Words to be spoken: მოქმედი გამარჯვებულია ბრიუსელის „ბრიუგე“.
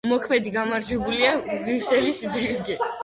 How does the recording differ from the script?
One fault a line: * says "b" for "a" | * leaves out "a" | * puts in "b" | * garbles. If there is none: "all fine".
all fine